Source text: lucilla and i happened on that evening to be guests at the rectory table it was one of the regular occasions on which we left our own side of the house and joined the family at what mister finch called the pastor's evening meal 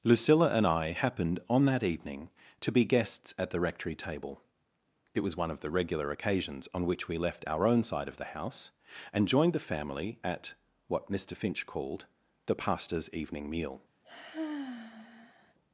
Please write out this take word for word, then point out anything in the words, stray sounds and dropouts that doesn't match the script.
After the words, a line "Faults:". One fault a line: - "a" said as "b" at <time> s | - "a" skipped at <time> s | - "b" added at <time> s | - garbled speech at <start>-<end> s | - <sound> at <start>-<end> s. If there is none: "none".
lucilla and i happened on that evening to be guests at the rectory table it was one of the regular occasions on which we left our own side of the house and joined the family at what mister finch called the pastor's evening meal
Faults:
- sigh at 14.0-15.5 s